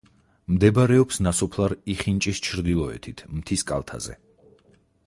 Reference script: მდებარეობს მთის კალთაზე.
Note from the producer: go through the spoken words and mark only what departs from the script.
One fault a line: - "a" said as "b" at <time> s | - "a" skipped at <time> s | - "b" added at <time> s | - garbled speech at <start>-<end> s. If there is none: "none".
- "ნასოფლარ იხინჭის ჩრდილოეთით" added at 1.3 s